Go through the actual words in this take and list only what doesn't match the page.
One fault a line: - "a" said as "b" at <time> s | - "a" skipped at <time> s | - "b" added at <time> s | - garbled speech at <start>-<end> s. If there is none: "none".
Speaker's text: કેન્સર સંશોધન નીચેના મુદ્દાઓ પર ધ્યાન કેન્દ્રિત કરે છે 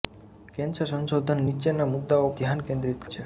- "પર" skipped at 2.3 s
- "કરે" skipped at 3.0 s